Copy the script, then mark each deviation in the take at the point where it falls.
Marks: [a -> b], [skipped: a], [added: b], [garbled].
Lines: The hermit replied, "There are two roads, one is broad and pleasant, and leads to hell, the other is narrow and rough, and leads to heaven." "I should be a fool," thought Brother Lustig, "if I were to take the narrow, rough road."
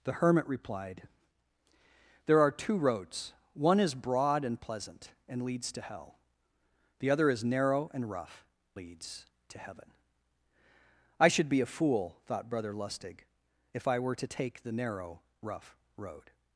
The hermit replied, "There are two roads, one is broad and pleasant, and leads to hell, the other is narrow and rough, [skipped: and] leads to heaven." "I should be a fool," thought Brother Lustig, "if I were to take the narrow, rough road."